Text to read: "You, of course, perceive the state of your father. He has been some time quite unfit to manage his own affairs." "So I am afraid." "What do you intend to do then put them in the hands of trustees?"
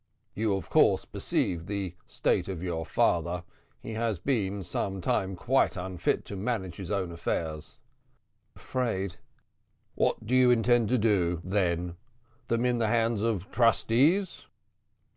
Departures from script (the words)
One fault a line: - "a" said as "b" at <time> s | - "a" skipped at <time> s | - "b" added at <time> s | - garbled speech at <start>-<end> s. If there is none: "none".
- "So I am" skipped at 7.8 s
- "put" skipped at 12.0 s